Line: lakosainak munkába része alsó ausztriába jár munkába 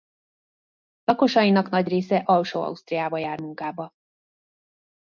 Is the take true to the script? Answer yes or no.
no